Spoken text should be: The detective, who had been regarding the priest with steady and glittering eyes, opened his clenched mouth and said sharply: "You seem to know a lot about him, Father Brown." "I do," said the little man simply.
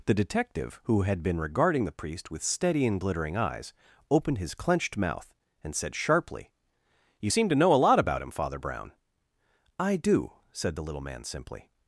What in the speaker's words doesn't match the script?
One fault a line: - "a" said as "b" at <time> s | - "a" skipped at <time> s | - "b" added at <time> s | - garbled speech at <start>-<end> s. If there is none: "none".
none